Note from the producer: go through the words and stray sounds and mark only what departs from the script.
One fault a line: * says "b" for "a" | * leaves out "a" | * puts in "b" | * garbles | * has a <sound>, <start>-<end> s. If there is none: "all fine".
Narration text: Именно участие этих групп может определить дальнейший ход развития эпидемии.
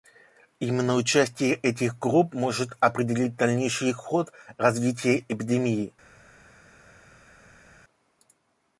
all fine